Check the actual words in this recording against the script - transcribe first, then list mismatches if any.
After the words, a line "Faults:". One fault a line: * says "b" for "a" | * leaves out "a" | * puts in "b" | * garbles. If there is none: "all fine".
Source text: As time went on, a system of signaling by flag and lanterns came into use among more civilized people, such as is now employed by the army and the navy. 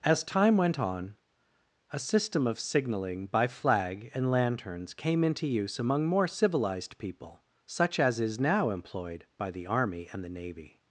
As time went on, a system of signaling by flag and lanterns came into use among more civilized people, such as is now employed by the army and the navy.
Faults:
all fine